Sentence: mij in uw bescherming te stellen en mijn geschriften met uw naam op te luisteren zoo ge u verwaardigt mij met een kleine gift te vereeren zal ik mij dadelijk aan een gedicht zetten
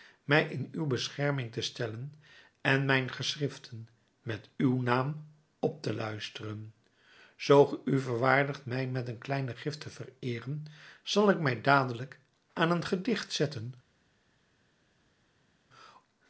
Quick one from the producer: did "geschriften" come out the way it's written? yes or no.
yes